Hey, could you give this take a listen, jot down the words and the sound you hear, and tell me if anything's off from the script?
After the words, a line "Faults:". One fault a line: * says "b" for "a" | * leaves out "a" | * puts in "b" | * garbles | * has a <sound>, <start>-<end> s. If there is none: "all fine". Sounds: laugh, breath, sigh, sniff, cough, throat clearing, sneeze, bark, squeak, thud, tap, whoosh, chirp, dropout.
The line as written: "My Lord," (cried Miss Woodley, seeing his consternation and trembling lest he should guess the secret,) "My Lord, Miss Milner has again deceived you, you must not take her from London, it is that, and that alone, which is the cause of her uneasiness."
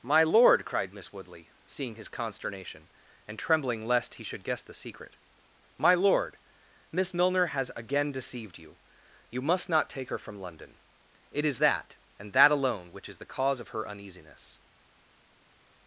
"My Lord," (cried Miss Woodley, seeing his consternation and trembling lest he should guess the secret,) "My Lord, Miss Milner has again deceived you, you must not take her from London, it is that, and that alone, which is the cause of her uneasiness."
Faults:
all fine